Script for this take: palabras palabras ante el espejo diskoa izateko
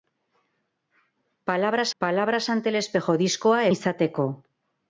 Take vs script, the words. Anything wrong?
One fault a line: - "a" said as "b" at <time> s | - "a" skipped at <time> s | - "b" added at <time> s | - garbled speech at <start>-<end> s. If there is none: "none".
none